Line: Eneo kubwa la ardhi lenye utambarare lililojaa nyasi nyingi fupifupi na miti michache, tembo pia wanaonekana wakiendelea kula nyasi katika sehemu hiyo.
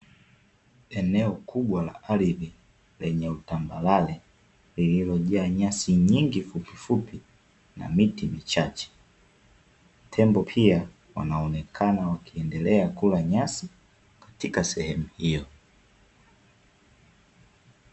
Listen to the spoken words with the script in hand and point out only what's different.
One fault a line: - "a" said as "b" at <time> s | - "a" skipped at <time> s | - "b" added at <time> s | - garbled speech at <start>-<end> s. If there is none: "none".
none